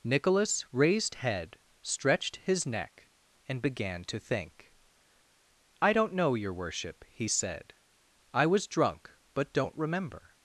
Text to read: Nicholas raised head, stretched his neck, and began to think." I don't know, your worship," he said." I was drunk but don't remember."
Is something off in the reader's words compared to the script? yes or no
no